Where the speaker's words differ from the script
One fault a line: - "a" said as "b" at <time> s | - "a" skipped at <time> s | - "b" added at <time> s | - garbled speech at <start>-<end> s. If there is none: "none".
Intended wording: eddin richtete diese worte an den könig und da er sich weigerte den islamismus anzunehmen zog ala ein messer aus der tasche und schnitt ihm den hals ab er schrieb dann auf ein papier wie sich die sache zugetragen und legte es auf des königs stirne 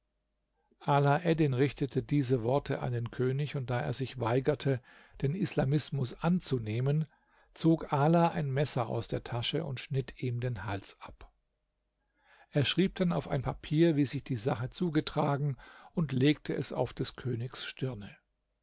none